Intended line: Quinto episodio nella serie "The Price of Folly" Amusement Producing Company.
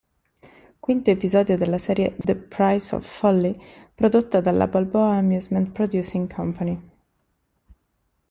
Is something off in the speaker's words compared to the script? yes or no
yes